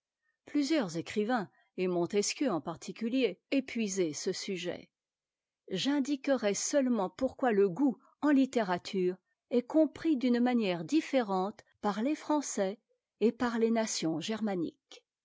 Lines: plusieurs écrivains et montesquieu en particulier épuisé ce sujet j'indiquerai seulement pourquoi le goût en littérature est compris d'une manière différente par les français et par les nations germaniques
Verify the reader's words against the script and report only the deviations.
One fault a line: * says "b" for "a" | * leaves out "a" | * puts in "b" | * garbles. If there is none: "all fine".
all fine